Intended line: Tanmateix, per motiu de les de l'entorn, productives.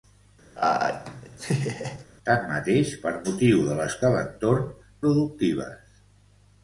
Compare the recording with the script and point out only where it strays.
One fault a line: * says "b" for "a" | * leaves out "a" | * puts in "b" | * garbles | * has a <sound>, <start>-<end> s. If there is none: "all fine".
* has a laugh, 0.6-2.1 s